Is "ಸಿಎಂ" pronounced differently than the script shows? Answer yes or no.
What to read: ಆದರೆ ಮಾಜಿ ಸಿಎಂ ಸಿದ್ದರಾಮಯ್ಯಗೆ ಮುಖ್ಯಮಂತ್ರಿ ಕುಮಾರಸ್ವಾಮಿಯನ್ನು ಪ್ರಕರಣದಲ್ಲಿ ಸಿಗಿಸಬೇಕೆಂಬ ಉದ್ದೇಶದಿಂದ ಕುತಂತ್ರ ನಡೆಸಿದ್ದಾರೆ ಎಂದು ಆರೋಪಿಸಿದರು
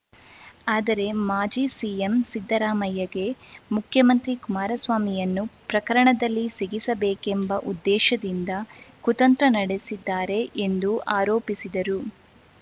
no